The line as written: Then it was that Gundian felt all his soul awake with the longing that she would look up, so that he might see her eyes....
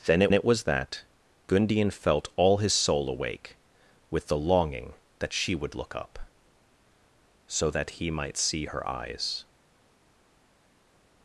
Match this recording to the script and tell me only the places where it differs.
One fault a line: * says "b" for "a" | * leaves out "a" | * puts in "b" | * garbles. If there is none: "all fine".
* puts in "it"